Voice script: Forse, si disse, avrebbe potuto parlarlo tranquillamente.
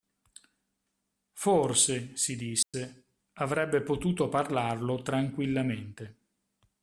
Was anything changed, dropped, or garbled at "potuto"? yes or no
no